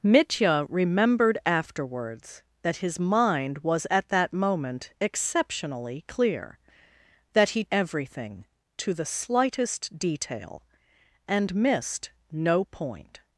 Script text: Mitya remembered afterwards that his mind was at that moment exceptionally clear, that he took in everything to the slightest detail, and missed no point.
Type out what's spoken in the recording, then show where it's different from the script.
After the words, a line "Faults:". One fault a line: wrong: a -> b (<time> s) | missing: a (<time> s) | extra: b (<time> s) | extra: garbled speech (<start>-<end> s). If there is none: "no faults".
Mitya remembered afterwards that his mind was at that moment exceptionally clear, that he everything to the slightest detail, and missed no point.
Faults:
missing: took in (7.7 s)